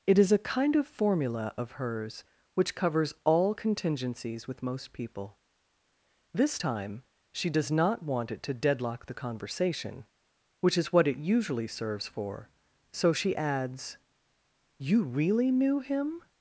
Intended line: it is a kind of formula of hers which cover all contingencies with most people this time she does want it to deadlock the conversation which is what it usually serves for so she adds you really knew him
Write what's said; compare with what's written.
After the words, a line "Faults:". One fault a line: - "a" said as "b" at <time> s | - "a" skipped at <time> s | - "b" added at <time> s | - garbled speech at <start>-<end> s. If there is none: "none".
it is a kind of formula of hers which covers all contingencies with most people this time she does not want it to deadlock the conversation which is what it usually serves for so she adds you really knew him
Faults:
- "cover" said as "covers" at 2.8 s
- "not" added at 7.7 s